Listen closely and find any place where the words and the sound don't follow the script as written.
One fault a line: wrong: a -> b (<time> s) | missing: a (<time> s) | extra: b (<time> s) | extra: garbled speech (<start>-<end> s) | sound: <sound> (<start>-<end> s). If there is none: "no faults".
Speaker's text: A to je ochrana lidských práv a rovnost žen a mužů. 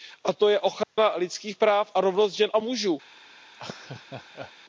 sound: dropout (0.8-1.0 s)
sound: laugh (3.5-4.5 s)